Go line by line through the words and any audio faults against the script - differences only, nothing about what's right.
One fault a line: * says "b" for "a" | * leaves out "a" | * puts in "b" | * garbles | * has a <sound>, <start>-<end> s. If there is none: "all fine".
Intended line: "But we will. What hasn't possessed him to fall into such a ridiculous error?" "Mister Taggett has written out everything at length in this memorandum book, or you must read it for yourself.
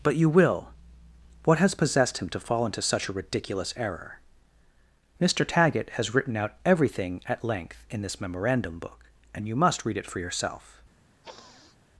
* says "you" for "we"
* says "has" for "hasn't"
* says "and" for "or"
* has a sniff, 11.2-11.8 s